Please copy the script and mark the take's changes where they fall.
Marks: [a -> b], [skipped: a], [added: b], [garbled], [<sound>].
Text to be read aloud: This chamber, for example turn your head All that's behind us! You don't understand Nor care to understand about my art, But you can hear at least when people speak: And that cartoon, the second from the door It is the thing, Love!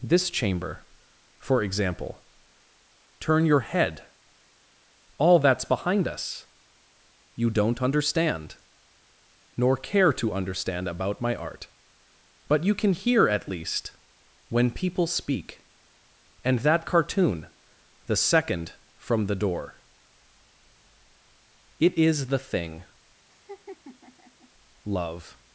This chamber, for example turn your head All that's behind us! You don't understand Nor care to understand about my art, But you can hear at least when people speak: And that cartoon, the second from the door It is the thing, [laugh] Love!